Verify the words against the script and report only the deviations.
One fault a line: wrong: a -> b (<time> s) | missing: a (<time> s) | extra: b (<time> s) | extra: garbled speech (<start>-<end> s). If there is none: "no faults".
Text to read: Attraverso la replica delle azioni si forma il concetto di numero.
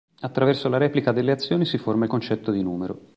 no faults